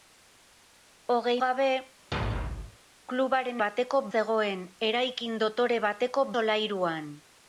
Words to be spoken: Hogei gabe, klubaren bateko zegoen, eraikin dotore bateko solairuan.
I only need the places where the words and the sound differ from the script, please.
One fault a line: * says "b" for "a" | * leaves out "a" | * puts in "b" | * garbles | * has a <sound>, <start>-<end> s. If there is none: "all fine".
* has a thud, 2.1-2.8 s